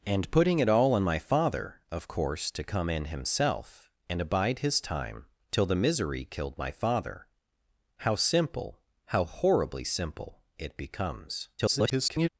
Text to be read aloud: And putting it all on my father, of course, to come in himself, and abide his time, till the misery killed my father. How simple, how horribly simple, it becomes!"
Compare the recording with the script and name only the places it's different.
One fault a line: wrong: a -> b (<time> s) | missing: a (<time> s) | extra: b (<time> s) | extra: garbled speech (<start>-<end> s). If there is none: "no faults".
extra: garbled speech (11.6-12.3 s)